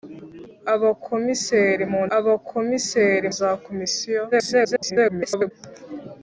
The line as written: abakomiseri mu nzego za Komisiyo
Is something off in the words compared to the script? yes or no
yes